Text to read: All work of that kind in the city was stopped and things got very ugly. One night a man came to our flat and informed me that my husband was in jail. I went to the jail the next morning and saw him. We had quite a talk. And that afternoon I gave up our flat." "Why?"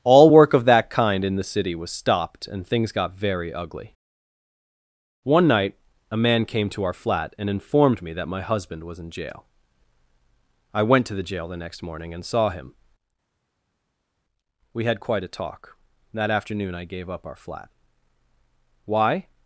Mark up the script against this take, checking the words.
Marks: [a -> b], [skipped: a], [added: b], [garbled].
All work of that kind in the city was stopped and things got very ugly. One night a man came to our flat and informed me that my husband was in jail. I went to the jail the next morning and saw him. We had quite a talk. [skipped: And] that afternoon I gave up our flat." "Why?"